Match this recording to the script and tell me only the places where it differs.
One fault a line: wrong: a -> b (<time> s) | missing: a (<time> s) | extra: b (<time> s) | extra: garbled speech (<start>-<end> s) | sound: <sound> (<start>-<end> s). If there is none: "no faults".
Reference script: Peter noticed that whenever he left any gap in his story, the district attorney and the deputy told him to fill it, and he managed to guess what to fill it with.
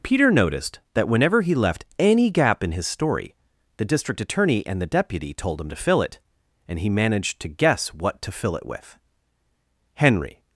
extra: Henry (9.9 s)